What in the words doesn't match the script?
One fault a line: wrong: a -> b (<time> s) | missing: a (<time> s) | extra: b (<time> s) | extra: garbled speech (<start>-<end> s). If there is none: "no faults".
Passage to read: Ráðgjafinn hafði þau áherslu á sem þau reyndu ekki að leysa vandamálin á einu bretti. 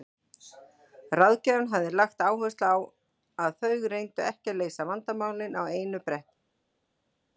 wrong: þau -> lagt (2.0 s)
wrong: sem -> að (3.5 s)